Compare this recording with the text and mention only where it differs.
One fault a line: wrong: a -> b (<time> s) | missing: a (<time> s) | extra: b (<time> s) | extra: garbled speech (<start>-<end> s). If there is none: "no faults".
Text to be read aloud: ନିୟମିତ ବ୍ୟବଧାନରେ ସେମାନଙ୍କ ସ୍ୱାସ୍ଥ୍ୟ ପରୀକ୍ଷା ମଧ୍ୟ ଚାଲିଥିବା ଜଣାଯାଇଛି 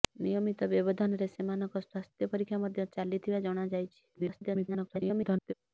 extra: garbled speech (4.1-5.5 s)